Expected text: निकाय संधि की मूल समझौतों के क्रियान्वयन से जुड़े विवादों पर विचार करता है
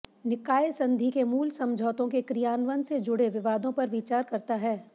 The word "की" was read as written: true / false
false